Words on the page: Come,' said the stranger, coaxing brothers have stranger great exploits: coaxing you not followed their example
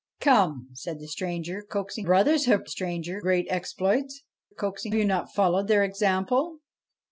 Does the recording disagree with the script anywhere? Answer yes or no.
no